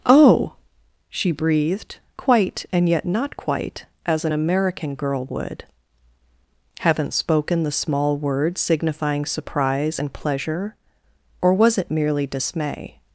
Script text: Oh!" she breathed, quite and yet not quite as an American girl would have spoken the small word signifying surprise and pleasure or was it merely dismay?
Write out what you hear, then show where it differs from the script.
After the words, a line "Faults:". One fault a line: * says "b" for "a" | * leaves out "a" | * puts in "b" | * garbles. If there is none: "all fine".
Oh!" she breathed, quite and yet not quite as an American girl would haven't spoken the small word signifying surprise and pleasure or was it merely dismay?
Faults:
* says "haven't" for "have"